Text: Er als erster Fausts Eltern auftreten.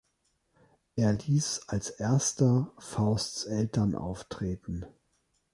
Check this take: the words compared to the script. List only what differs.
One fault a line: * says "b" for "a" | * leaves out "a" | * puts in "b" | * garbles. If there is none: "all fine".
* puts in "ließ"